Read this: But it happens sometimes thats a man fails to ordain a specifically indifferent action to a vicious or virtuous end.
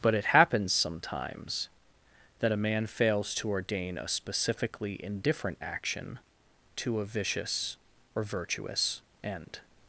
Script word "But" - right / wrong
right